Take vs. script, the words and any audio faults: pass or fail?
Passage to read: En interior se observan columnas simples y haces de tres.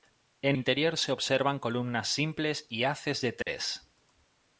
fail